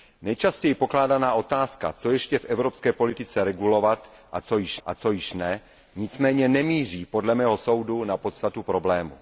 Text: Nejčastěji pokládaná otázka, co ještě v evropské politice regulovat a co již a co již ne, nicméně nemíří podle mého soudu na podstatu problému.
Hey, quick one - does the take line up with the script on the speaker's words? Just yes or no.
yes